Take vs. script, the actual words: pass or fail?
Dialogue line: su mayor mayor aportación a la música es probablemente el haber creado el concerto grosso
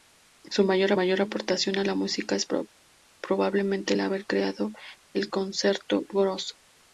pass